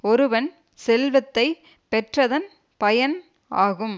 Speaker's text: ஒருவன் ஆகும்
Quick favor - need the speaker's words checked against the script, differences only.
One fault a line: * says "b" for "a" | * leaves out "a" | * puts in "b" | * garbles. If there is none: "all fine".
* puts in "செல்வத்தை பெற்றதன் பயன்"